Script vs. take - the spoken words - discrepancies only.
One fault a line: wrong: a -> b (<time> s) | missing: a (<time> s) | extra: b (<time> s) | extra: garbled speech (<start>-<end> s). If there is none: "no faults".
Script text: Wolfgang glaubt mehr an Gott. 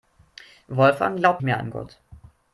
no faults